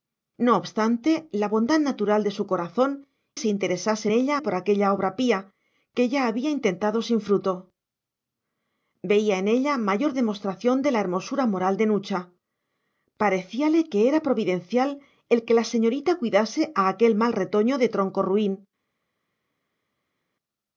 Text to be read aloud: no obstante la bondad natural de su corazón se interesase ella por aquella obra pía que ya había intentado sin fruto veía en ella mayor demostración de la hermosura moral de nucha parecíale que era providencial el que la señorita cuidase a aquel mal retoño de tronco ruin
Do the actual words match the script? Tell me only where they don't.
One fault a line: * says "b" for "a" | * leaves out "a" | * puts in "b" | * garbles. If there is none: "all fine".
all fine